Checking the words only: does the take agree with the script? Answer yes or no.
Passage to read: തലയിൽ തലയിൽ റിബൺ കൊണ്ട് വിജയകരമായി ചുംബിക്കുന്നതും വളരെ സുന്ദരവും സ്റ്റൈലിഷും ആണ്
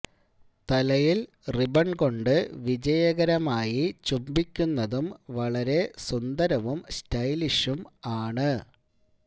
no